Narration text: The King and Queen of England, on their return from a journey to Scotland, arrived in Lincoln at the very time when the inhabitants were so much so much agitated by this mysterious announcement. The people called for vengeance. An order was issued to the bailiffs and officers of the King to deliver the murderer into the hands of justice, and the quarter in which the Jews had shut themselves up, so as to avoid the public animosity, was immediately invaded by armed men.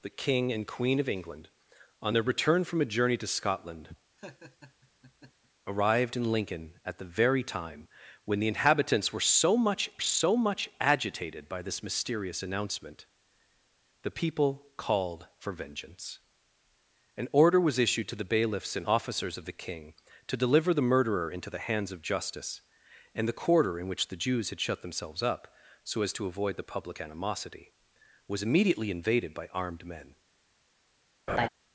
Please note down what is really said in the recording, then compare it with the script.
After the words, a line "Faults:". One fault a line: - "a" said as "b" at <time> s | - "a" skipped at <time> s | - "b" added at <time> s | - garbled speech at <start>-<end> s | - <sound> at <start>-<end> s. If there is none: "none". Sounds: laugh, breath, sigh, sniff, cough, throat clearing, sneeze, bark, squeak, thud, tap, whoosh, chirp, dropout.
The King and Queen of England, on their return from a journey to Scotland, arrived in Lincoln at the very time when the inhabitants were so much so much agitated by this mysterious announcement. The people called for vengeance. An order was issued to the bailiffs and officers of the King to deliver the murderer into the hands of justice, and the quarter in which the Jews had shut themselves up, so as to avoid the public animosity, was immediately invaded by armed men.
Faults:
- laugh at 4.2-5.5 s
- laugh at 31.3-31.5 s